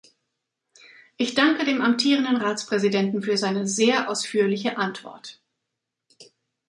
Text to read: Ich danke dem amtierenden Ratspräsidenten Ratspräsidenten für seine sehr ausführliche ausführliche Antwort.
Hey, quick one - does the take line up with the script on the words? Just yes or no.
no